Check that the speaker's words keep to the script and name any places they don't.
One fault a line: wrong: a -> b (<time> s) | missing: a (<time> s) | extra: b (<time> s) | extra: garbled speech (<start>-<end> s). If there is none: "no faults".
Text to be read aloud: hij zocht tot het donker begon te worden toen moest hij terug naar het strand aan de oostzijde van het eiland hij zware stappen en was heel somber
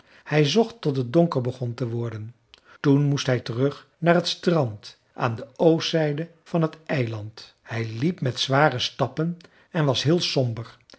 extra: liep met (8.0 s)